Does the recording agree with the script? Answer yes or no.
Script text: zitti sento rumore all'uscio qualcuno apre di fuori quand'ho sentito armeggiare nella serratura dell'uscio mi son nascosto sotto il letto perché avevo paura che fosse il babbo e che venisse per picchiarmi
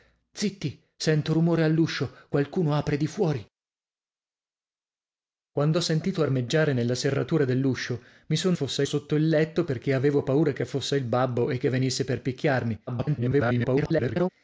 no